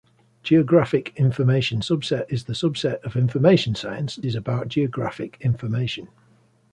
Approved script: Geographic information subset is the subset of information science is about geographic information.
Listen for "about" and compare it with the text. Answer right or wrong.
right